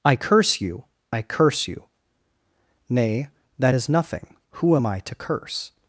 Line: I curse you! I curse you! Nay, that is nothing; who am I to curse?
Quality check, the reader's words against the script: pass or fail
pass